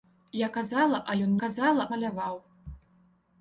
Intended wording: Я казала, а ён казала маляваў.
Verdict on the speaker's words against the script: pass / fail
pass